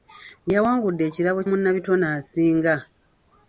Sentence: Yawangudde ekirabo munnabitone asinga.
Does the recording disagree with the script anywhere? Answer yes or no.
no